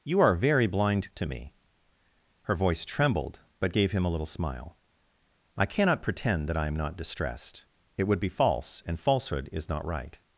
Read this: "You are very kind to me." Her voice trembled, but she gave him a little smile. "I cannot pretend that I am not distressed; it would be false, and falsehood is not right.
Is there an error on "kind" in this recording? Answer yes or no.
yes